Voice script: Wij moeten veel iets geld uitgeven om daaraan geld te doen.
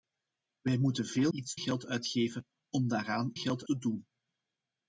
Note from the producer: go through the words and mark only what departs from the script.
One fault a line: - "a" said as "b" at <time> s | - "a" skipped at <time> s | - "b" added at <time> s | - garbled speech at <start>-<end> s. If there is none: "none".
none